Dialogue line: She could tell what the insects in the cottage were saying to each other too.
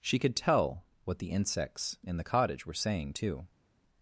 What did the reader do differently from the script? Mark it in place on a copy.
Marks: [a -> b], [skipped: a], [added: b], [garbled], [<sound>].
She could tell what the insects in the cottage were saying [skipped: to each other] too.